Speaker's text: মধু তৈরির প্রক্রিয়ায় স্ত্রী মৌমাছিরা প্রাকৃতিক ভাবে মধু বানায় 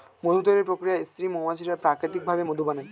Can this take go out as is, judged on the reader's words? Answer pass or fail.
pass